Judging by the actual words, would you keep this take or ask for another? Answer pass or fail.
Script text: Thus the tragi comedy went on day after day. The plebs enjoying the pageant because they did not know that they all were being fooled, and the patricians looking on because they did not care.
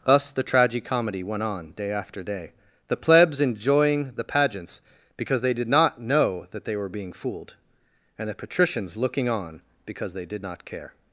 fail